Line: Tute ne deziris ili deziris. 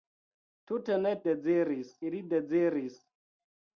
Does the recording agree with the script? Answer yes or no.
yes